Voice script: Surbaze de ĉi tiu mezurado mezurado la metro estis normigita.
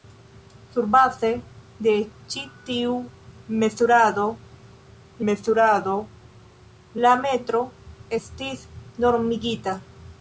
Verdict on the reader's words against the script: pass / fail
pass